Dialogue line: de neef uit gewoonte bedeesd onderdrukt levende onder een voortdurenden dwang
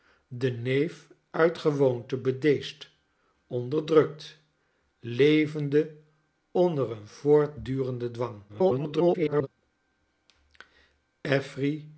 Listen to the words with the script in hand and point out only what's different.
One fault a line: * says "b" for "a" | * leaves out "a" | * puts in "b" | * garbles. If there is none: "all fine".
* garbles